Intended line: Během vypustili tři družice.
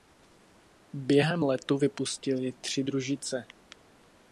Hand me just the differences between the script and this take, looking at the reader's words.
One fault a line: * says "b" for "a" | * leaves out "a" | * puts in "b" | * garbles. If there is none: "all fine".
* puts in "letu"